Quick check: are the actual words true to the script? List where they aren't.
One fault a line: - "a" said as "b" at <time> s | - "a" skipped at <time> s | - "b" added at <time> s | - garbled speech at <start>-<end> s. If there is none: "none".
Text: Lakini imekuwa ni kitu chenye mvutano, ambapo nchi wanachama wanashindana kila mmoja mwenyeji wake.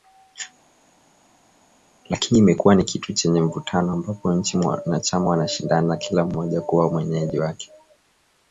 - "kuwa" added at 6.6 s